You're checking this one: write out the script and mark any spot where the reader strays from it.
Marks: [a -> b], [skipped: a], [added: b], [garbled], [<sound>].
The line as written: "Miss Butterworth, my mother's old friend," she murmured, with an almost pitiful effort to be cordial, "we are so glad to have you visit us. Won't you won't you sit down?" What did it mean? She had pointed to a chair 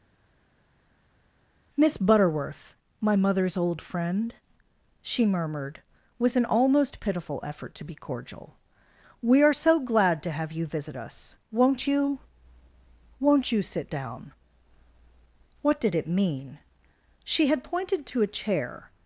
"Miss Butterworth, my mother's old friend," she murmured, with an almost pitiful effort to be cordial, "we are so glad to have you visit us. Won't you won't you sit down?" What did it mean? She had pointed to a chair